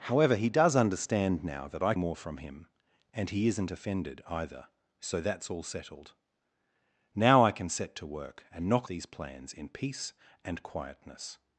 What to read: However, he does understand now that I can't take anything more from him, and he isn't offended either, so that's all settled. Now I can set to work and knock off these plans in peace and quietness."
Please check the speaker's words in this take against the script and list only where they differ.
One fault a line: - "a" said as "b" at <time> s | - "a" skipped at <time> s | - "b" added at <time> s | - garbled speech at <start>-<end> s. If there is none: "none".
- "can't take anything" skipped at 1.9 s
- "off" skipped at 8.9 s